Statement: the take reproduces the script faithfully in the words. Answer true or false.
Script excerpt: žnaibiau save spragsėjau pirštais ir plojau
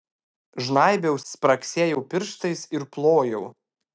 false